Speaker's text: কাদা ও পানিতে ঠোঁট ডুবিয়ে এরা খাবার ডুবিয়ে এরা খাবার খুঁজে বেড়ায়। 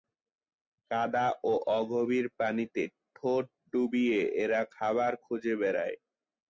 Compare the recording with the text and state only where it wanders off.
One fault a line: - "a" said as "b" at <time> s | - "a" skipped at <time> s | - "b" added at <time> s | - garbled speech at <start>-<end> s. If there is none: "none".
- "অগভীর" added at 1.8 s
- "ডুবিয়ে এরা খাবার" skipped at 5.1 s